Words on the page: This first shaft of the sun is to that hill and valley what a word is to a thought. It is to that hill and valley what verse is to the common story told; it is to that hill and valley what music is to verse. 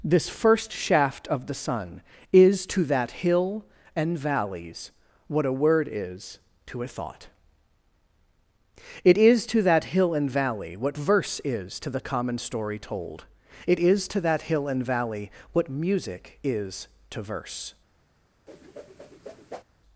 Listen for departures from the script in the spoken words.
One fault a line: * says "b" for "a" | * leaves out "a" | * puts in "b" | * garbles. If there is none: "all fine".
* says "valleys" for "valley"